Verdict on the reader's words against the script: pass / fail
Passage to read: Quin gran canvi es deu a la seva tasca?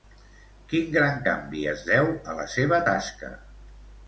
pass